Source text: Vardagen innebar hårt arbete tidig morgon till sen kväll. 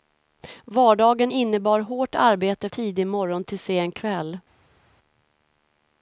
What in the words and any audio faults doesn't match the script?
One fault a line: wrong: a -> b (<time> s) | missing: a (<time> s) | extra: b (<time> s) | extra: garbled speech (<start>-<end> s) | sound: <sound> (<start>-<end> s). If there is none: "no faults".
no faults